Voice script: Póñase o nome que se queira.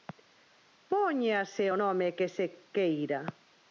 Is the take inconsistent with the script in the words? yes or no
no